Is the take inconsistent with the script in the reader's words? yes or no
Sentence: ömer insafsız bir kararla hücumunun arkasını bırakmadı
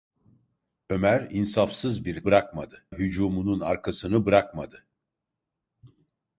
yes